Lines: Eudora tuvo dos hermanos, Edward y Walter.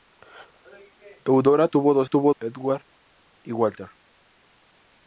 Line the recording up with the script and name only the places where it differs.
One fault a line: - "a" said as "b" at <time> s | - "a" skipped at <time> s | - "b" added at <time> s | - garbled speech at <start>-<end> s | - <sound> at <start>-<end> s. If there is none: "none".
- "hermanos" said as "tuvo" at 2.0 s